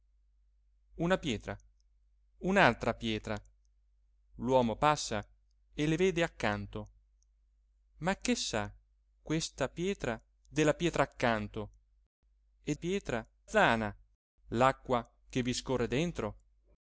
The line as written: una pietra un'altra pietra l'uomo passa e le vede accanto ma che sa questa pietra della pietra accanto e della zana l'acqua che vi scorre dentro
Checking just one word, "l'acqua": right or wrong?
right